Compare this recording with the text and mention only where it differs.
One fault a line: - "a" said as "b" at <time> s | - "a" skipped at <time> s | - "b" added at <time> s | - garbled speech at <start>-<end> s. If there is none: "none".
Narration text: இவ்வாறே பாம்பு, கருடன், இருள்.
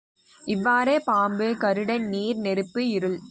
- "நீர் நெருப்பு" added at 2.1 s